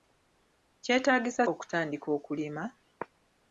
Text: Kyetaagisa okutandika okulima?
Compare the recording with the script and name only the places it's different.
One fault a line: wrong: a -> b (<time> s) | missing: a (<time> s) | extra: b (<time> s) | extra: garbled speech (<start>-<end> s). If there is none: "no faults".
no faults